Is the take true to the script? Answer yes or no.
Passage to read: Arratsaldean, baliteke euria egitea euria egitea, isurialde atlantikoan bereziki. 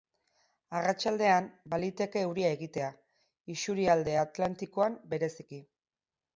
no